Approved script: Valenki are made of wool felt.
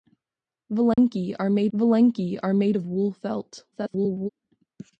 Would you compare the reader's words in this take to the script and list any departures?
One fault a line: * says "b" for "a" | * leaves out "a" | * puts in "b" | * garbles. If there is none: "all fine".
* puts in "valenki are made"
* garbles